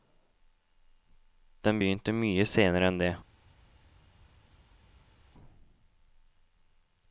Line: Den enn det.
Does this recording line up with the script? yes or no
no